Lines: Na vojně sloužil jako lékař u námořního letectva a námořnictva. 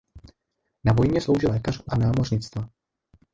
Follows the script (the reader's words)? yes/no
no